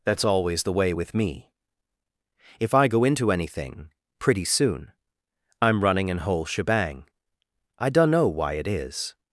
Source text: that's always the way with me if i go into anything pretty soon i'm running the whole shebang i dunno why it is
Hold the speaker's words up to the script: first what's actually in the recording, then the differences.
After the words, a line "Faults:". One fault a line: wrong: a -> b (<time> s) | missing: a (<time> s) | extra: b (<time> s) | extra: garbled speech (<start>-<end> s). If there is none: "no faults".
that's always the way with me if i go into anything pretty soon i'm running an whole shebang i dunno why it is
Faults:
wrong: the -> an (6.1 s)